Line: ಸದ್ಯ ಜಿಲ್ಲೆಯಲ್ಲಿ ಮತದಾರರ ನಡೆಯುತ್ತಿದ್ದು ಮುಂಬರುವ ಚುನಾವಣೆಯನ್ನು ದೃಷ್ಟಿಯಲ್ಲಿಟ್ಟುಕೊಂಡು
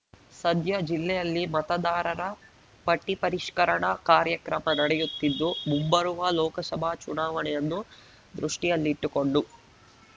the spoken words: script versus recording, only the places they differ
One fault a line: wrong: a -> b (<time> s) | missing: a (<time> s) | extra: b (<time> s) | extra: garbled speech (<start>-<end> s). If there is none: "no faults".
extra: ಪಟ್ಟಿಪರಿಷ್ಕರಣಾ ಕಾರ್ಯಕ್ರಮ (2.9 s)
extra: ಲೋಕಸಭಾ (6.4 s)